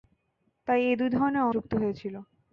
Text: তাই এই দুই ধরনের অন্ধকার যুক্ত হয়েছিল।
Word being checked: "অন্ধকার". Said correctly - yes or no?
no